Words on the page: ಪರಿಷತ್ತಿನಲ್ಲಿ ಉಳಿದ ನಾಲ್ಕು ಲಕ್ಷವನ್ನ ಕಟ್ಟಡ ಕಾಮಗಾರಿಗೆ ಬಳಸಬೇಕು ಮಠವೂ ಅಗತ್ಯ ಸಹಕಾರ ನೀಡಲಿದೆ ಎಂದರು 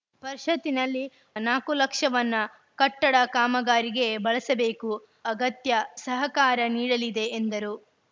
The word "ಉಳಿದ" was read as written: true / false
false